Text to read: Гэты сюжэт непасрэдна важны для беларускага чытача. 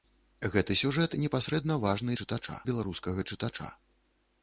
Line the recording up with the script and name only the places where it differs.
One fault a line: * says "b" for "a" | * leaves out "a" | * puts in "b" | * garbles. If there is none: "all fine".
* says "чытача" for "для"